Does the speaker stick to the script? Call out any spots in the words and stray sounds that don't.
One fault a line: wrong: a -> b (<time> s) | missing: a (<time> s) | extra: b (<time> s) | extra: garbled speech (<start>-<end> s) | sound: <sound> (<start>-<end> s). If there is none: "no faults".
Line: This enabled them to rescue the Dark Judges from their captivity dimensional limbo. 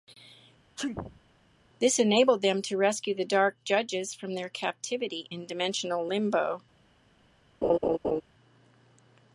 sound: sneeze (0.8-1.2 s)
extra: in (5.3 s)
sound: laugh (7.6-8.2 s)